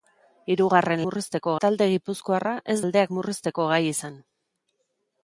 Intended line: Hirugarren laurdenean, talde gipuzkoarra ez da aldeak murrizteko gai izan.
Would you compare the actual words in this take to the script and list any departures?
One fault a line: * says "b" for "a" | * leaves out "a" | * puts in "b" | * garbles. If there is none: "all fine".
* says "murrizteko" for "laurdenean"
* leaves out "da"